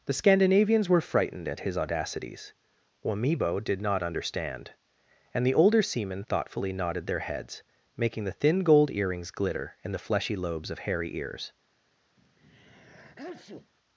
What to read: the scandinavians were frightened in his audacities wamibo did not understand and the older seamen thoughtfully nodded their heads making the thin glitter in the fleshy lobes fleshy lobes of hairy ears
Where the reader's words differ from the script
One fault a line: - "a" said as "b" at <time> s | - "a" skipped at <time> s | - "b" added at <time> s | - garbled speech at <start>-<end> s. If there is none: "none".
- "in" said as "at" at 1.5 s
- "gold earrings" added at 8.6 s
- "fleshy lobes" skipped at 10.7 s